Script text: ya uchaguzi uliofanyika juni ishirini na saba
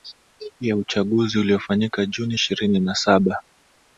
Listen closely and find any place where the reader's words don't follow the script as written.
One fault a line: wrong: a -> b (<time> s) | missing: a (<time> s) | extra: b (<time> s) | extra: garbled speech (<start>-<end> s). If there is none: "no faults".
no faults